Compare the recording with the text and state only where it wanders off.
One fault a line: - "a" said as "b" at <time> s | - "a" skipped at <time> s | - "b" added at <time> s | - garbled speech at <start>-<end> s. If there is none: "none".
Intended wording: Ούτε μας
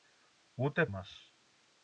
none